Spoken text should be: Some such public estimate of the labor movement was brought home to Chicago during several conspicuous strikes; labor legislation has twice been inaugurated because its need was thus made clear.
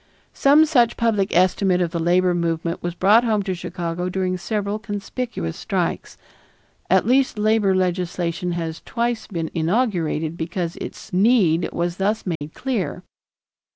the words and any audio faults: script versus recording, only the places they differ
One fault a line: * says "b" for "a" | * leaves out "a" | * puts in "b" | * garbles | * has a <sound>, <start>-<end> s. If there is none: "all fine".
* puts in "at least"
* has a dropout, 12.4-12.4 s